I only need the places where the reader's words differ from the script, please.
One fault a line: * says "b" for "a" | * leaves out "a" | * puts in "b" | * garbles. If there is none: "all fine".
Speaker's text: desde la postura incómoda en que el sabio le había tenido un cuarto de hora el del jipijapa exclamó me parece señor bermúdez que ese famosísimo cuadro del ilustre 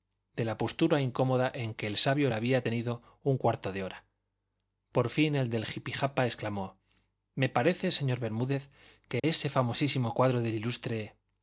* says "de" for "desde"
* puts in "por fin"